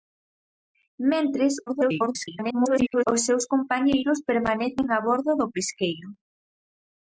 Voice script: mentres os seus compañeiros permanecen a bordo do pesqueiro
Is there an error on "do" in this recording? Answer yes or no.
no